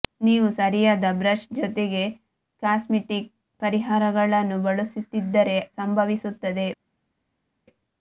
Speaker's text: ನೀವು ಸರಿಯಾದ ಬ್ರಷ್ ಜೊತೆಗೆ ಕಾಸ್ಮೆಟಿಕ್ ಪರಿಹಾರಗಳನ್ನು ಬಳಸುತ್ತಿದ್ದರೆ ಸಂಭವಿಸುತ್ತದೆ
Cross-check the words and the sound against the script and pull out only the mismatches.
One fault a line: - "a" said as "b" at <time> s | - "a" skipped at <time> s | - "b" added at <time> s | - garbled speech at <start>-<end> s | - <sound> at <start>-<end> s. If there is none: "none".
none